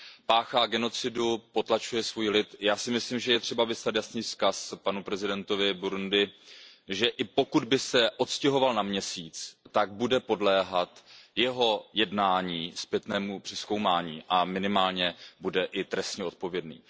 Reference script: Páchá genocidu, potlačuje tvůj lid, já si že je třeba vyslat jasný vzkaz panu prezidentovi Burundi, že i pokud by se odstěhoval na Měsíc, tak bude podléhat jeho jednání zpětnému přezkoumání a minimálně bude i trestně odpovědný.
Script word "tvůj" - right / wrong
wrong